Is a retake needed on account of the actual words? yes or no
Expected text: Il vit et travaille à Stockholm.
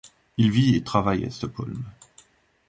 no